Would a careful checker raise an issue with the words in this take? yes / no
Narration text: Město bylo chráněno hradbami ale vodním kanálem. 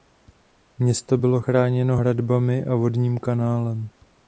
yes